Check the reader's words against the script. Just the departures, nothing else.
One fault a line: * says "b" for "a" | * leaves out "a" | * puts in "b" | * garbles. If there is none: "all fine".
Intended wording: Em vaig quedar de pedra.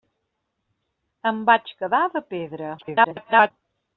* garbles